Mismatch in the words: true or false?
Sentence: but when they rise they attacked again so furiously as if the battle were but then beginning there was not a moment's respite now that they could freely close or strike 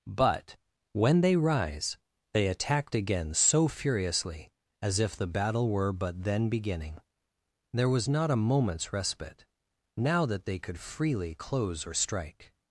false